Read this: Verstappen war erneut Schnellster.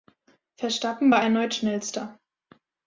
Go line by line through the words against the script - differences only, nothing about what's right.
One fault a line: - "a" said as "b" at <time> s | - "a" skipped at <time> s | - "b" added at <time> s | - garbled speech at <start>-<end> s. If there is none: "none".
none